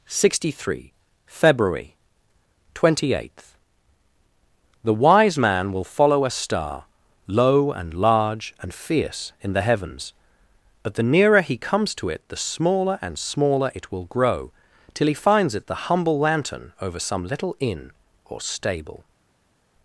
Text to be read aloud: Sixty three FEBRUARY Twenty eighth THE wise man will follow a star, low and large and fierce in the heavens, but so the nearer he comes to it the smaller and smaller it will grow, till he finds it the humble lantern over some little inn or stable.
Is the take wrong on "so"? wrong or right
wrong